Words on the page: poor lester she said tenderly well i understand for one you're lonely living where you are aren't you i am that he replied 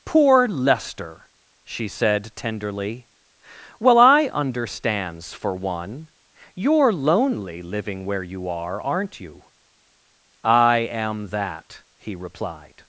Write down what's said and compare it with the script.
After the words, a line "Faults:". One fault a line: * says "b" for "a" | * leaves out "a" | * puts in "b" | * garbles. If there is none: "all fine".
poor lester she said tenderly well i understands for one you're lonely living where you are aren't you i am that he replied
Faults:
* says "understands" for "understand"